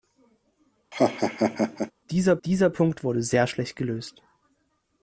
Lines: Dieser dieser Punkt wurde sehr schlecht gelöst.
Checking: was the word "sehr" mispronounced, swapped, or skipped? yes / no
no